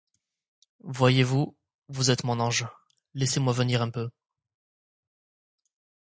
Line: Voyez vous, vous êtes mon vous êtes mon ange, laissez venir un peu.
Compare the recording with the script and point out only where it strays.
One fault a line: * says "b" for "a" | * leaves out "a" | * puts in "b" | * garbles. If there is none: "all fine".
* leaves out "vous êtes mon"
* puts in "moi"